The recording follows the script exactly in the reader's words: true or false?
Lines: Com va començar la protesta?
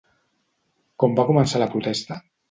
true